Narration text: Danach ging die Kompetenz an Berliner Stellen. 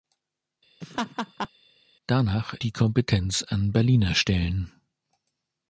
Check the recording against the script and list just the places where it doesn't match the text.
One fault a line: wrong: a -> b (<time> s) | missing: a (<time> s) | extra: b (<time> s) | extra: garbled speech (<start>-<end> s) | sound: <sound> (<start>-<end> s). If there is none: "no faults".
sound: laugh (0.8-1.5 s)
missing: ging (2.5 s)